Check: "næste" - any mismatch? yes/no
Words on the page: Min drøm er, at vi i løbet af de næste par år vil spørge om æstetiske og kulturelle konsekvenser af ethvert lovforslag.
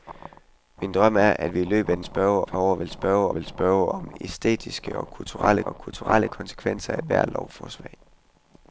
yes